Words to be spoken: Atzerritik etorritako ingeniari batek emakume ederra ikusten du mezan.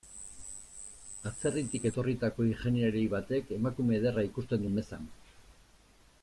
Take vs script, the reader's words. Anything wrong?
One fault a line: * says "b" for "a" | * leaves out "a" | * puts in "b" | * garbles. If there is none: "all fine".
all fine